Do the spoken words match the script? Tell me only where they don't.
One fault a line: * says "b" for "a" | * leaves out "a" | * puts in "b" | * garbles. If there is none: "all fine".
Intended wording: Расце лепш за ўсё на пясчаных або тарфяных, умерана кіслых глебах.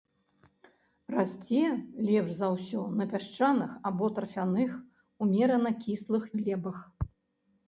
all fine